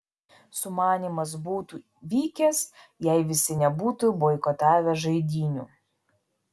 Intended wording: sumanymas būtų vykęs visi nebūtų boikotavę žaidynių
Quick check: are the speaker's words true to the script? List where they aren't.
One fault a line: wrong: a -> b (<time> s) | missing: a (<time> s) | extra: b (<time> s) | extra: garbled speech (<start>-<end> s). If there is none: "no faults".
extra: jei (3.1 s)